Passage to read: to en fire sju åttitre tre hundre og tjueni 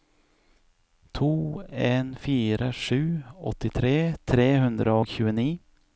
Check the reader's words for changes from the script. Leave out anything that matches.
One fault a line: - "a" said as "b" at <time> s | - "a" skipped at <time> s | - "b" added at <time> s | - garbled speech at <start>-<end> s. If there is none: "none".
none